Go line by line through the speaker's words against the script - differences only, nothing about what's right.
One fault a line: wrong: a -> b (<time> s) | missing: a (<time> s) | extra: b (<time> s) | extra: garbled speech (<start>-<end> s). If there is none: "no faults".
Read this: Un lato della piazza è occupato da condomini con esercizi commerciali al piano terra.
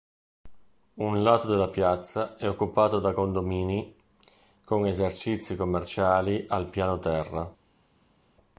no faults